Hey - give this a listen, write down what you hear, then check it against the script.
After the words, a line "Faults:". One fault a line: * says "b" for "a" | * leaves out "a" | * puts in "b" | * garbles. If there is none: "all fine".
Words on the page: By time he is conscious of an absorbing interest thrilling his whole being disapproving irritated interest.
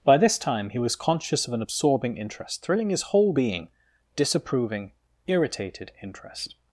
By this time he was conscious of an absorbing interest thrilling his whole being disapproving irritated interest.
Faults:
* puts in "this"
* says "was" for "is"